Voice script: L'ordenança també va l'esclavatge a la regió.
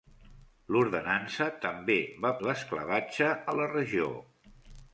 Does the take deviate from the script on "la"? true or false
false